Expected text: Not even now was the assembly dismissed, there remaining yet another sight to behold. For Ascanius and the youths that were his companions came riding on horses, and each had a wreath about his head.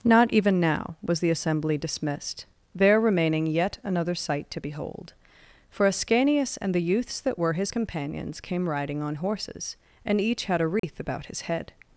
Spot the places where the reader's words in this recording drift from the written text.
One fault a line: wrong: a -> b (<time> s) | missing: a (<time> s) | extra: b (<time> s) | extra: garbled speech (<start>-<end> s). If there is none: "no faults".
no faults